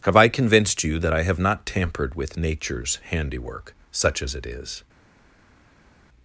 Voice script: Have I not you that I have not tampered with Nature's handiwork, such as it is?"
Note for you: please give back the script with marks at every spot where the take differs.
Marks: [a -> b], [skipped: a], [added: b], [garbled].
Have I [not -> convinced] you that I have not tampered with Nature's handiwork, such as it is?"